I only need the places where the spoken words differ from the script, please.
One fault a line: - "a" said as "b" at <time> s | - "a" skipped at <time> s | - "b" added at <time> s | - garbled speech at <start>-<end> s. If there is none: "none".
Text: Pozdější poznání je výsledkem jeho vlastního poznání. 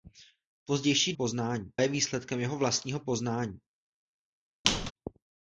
none